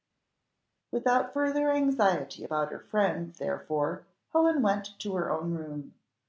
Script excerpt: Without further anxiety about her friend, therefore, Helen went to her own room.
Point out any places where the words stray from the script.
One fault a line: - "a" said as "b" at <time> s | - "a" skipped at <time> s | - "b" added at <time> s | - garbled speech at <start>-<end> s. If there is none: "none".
none